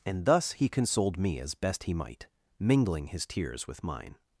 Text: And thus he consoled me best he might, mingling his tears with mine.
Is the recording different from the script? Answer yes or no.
yes